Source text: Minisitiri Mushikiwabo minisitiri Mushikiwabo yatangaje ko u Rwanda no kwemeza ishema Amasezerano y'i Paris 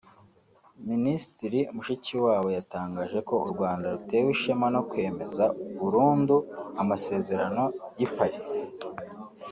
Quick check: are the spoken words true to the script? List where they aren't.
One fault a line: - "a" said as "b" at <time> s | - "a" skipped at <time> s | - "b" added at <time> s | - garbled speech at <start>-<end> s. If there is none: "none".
- "minisitiri Mushikiwabo" skipped at 2.5 s
- "rutewe ishema" added at 3.9 s
- "ishema" said as "burundu" at 5.8 s